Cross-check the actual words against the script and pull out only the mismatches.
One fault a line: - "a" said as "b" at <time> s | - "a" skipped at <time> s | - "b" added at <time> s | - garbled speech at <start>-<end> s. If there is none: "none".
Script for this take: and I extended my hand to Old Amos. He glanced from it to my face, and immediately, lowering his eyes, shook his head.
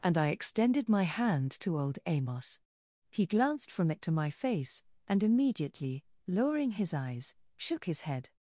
none